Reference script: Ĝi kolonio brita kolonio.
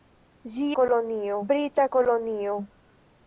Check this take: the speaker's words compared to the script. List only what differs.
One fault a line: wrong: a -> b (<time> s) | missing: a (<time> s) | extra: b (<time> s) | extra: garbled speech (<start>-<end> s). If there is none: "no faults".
no faults